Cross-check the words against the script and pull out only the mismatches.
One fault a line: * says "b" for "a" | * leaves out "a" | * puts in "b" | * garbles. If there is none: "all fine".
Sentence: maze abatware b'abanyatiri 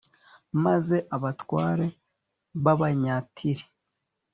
all fine